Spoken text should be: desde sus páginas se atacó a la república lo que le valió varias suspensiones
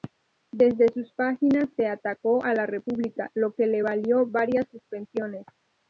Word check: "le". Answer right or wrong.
right